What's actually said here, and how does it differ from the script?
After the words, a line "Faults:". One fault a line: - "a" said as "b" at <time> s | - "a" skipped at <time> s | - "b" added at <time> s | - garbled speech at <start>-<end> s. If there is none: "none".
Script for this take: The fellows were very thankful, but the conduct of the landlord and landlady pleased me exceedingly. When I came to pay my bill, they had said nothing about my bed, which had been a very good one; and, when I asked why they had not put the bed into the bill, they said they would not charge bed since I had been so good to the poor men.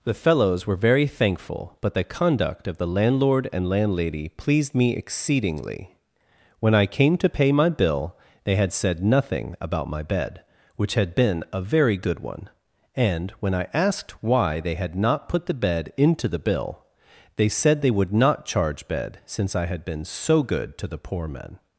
The fellows were very thankful, but the conduct of the landlord and landlady pleased me exceedingly. When I came to pay my bill, they had said nothing about my bed, which had been a very good one; and, when I asked why they had not put the bed into the bill, they said they would not charge bed since I had been so good to the poor men.
Faults:
none